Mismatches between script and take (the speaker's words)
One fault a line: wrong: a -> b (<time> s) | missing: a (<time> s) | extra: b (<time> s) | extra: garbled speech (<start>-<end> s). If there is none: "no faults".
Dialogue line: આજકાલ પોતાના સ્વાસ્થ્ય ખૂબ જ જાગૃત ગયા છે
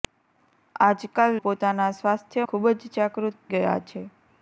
no faults